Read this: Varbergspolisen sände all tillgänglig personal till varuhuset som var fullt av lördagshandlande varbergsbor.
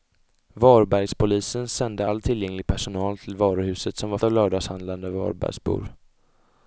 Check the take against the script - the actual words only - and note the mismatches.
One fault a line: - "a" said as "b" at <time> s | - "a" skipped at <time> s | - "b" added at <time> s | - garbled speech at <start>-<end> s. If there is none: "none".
- "fullt" skipped at 4.2 s